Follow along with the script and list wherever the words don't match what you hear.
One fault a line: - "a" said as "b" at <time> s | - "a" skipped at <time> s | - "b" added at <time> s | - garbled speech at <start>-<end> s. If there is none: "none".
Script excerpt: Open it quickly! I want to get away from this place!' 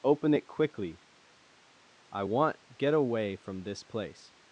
- "to" skipped at 2.6 s